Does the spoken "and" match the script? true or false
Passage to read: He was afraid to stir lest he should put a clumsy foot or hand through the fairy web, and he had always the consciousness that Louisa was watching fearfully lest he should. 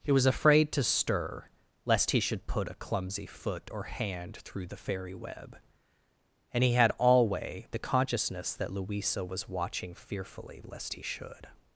true